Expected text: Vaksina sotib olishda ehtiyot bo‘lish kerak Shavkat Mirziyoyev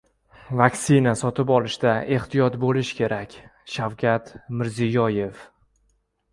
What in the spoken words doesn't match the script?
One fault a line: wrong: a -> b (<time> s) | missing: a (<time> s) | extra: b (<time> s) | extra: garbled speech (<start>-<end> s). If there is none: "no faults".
no faults